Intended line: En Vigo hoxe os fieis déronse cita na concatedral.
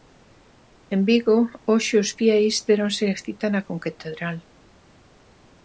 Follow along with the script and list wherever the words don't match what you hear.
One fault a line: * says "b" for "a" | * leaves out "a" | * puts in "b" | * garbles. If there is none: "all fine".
all fine